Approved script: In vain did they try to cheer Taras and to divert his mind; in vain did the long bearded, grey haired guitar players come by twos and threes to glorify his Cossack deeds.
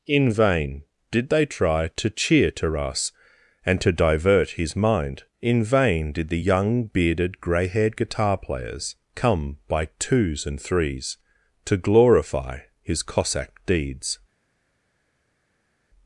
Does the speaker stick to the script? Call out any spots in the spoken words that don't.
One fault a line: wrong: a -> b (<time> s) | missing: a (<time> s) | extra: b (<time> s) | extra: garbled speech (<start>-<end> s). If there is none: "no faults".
wrong: long -> young (6.4 s)